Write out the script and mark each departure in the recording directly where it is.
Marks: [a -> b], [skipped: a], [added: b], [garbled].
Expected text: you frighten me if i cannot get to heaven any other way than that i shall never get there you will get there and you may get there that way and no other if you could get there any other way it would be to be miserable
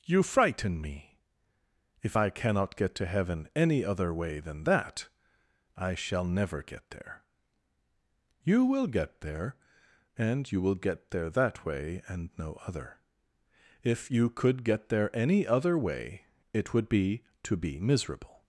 you frighten me if i cannot get to heaven any other way than that i shall never get there you will get there and you [may -> will] get there that way and no other if you could get there any other way it would be to be miserable